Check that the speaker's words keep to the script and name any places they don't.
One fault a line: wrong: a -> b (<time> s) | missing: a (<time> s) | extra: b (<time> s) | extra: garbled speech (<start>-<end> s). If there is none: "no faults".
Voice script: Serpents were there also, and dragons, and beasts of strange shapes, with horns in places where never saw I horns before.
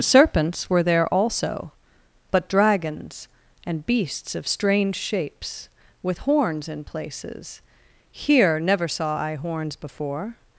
wrong: and -> but (2.3 s)
wrong: where -> here (8.1 s)